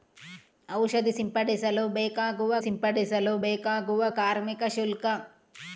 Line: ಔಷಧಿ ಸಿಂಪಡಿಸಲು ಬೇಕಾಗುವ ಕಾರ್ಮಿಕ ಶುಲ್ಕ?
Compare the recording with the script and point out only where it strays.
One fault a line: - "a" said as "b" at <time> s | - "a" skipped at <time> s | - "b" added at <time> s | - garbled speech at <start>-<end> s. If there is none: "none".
- "ಸಿಂಪಡಿಸಲು ಬೇಕಾಗುವ" added at 2.6 s